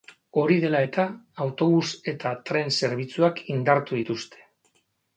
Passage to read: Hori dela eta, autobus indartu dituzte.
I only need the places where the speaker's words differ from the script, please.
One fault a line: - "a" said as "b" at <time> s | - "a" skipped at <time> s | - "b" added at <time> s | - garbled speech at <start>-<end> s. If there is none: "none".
- "eta tren zerbitzuak" added at 2.1 s